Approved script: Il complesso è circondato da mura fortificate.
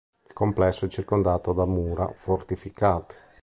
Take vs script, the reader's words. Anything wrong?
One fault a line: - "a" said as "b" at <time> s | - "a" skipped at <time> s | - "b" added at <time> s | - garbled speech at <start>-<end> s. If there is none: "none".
none